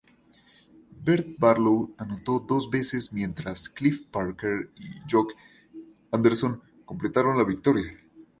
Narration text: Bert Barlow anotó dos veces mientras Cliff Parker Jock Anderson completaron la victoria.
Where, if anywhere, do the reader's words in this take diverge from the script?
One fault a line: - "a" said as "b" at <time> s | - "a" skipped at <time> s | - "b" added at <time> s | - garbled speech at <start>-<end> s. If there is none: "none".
- "y" added at 4.8 s